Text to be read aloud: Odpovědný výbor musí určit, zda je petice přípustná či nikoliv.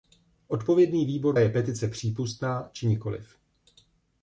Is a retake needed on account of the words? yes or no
yes